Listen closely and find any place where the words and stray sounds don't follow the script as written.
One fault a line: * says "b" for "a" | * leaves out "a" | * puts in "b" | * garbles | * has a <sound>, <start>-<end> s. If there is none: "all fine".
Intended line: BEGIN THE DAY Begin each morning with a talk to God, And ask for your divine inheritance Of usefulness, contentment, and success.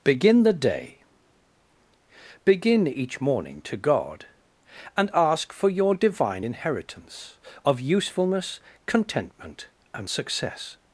* leaves out "with a talk"